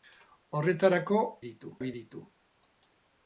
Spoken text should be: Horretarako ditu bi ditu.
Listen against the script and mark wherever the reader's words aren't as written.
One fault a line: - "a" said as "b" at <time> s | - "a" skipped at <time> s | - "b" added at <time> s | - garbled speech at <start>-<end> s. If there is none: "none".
none